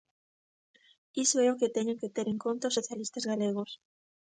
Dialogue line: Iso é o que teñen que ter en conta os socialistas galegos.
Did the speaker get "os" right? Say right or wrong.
right